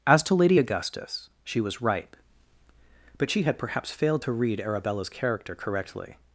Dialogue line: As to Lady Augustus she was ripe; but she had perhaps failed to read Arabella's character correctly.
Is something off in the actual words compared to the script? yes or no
no